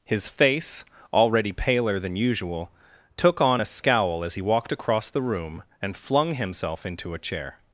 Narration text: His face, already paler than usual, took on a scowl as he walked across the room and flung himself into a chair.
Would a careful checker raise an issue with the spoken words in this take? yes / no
no